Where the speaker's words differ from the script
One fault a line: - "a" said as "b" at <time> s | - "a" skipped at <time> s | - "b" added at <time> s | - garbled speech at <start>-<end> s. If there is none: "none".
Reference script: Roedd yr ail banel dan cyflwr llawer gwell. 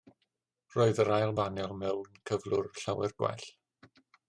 - "dan" said as "mewn" at 1.8 s